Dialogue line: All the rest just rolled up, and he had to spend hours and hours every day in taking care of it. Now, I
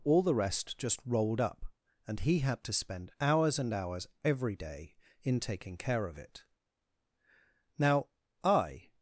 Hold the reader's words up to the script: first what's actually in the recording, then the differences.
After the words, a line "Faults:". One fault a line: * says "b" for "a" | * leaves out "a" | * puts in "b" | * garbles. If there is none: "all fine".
All the rest just rolled up, and he had to spend hours and hours every day in taking care of it. Now, I
Faults:
all fine